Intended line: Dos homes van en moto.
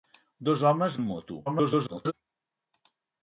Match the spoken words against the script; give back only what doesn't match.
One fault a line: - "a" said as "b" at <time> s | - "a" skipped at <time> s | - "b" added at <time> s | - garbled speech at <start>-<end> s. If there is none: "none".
- "van" skipped at 1.0 s
- garbled speech at 1.5-2.1 s